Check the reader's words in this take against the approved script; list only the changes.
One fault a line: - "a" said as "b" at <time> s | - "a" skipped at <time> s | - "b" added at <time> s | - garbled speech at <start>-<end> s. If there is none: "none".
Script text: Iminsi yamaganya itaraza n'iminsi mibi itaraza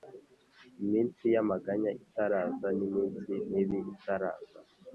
none